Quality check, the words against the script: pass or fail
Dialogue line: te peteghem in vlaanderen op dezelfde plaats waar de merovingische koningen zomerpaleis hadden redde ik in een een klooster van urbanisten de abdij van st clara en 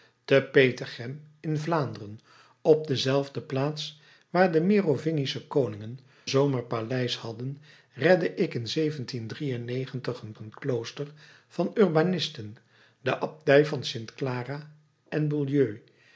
pass